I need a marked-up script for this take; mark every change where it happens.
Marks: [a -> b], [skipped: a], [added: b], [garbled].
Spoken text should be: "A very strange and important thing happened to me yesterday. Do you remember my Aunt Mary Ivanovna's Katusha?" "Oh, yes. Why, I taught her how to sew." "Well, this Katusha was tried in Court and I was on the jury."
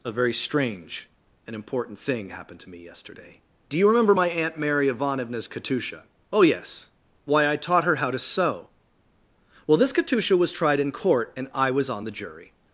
"A very strange and important thing happened to me yesterday. Do you remember my Aunt Mary Ivanovna's Katusha?" "Oh, yes. Why, I taught her how to sew." "Well, this Katusha was tried in Court and I was on the jury."